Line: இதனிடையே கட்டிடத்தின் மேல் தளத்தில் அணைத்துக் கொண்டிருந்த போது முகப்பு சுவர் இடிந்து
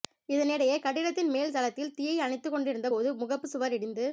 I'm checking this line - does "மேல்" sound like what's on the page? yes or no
yes